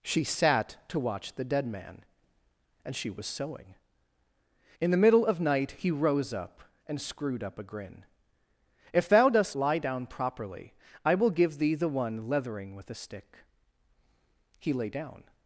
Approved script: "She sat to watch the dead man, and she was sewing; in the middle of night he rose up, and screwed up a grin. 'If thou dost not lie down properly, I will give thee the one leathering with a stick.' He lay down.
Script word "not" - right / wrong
wrong